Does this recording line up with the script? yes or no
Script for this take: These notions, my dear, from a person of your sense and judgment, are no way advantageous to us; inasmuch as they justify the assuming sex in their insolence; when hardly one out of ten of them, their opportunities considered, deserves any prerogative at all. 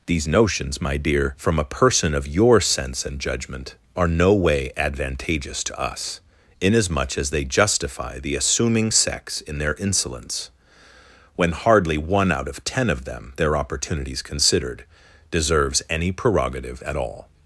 yes